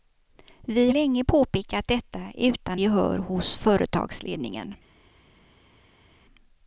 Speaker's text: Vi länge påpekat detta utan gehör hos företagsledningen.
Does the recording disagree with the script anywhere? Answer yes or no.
no